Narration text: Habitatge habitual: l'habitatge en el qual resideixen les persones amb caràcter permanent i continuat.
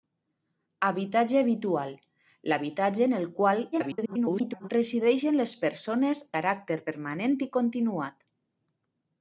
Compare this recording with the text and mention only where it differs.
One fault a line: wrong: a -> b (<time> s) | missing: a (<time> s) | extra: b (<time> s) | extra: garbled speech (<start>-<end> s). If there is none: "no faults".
extra: garbled speech (3.7-4.7 s)
missing: amb (6.2 s)